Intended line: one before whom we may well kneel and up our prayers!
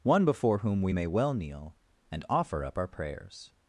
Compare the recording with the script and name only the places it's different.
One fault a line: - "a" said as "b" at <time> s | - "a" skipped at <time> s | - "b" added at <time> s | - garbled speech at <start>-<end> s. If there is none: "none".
- "offer" added at 2.3 s